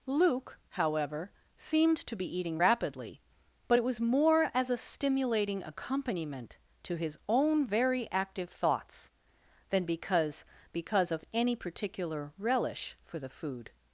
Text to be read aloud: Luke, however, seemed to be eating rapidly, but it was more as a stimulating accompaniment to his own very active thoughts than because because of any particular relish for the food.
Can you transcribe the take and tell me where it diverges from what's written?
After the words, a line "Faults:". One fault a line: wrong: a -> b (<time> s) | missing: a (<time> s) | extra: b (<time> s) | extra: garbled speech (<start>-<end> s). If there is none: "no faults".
Luke, however, seemed to be eating rapidly, but it was more as a stimulating accompaniment to his own very active thoughts than because because of any particular relish for the food.
Faults:
no faults